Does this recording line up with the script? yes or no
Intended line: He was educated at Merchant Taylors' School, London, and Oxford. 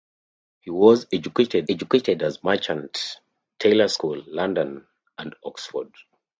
no